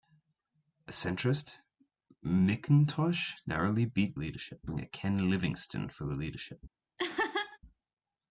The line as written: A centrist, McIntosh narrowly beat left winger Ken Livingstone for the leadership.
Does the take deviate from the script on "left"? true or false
true